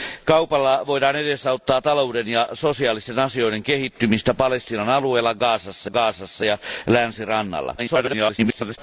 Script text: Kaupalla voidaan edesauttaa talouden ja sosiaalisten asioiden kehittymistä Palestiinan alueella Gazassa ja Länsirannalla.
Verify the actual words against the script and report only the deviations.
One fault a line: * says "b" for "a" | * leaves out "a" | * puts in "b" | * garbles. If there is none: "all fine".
* puts in "Gazassa"
* garbles